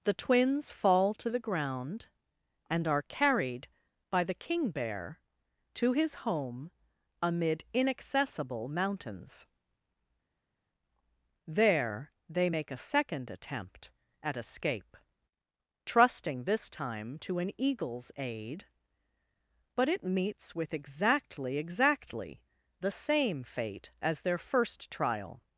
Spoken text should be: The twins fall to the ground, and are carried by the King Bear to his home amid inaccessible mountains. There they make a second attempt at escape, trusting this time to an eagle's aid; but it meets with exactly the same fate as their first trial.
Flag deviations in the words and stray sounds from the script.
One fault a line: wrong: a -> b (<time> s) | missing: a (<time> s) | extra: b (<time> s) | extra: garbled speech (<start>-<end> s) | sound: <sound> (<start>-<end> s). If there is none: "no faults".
extra: exactly (21.6 s)